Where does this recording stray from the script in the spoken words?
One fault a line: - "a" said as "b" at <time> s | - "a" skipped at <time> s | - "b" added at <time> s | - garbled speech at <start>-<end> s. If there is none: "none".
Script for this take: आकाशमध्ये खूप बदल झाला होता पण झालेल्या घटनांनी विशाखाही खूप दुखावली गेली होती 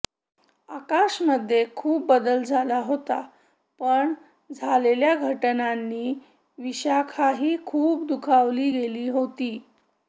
none